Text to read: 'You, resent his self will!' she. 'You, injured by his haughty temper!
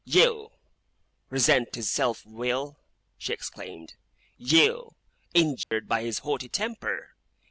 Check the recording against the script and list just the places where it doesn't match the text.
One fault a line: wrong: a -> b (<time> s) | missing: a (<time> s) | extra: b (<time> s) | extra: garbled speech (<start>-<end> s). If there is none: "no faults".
extra: exclaimed (3.3 s)